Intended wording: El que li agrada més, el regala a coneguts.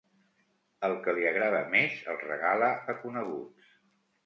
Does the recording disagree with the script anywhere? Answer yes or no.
no